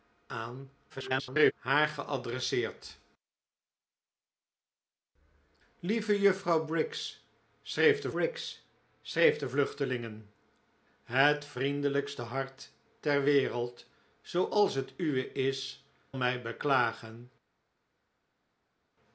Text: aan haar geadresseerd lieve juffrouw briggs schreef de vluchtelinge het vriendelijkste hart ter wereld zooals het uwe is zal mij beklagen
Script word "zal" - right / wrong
wrong